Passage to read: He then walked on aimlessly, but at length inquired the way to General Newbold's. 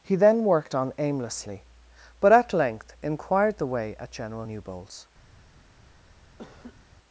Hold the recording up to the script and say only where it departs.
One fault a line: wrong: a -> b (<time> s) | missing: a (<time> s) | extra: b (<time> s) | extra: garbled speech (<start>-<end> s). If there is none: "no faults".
wrong: walked -> worked (0.4 s)
wrong: to -> at (4.0 s)